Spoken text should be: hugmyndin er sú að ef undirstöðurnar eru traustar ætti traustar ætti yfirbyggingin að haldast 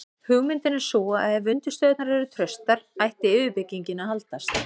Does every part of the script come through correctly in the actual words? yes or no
no